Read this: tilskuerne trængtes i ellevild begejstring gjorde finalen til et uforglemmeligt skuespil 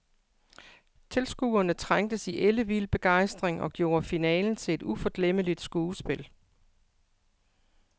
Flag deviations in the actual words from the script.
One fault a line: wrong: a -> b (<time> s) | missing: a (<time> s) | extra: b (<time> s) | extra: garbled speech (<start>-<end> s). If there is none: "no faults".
extra: og (3.6 s)